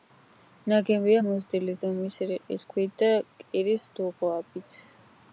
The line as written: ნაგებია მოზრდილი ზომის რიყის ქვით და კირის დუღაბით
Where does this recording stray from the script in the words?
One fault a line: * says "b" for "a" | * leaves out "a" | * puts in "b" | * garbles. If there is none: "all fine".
all fine